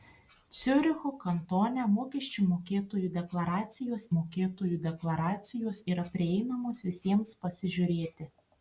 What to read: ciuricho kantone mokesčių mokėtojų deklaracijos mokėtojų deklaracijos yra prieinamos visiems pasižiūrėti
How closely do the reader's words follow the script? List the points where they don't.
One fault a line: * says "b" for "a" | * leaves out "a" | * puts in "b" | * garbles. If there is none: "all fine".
all fine